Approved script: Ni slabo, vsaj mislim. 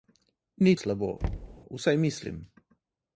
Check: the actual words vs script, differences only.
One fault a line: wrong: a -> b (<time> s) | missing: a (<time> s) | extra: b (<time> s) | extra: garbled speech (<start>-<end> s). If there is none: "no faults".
no faults